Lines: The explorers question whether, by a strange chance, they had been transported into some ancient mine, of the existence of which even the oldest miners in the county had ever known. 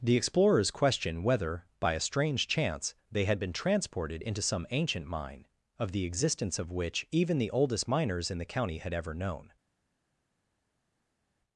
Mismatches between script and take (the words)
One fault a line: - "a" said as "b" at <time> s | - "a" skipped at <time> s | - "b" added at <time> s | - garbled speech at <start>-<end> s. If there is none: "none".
none